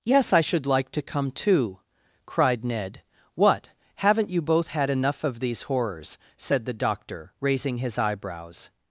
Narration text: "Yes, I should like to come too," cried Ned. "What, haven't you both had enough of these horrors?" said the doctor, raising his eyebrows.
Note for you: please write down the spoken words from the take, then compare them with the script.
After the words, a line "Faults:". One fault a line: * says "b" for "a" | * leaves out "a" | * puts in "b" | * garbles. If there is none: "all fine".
"Yes, I should like to come too," cried Ned. "What, haven't you both had enough of these horrors?" said the doctor, raising his eyebrows.
Faults:
all fine